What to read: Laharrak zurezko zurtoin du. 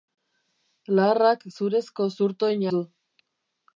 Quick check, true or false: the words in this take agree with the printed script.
true